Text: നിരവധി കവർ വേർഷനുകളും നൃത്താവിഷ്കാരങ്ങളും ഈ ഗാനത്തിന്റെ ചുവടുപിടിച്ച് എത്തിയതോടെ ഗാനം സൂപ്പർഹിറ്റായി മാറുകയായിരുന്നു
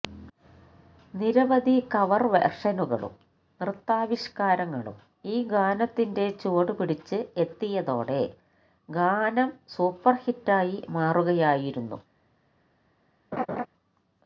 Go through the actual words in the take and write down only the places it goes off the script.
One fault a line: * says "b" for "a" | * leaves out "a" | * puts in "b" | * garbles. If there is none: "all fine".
all fine